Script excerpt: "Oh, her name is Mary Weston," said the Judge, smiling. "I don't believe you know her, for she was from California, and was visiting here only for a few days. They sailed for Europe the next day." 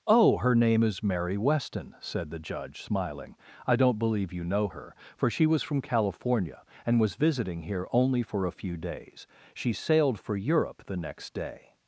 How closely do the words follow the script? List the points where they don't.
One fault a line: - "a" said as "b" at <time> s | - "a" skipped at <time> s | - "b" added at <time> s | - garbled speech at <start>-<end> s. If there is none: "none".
- "They" said as "She" at 9.5 s